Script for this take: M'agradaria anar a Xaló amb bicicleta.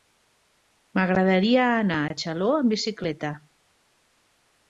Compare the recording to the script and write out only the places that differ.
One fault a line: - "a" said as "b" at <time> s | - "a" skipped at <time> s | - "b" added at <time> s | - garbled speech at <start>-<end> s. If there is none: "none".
none